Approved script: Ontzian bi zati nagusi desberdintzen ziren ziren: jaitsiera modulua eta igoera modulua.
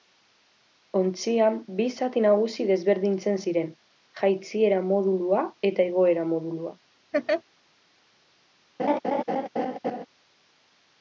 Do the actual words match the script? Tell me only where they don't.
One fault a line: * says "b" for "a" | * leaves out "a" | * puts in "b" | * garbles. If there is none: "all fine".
* leaves out "ziren"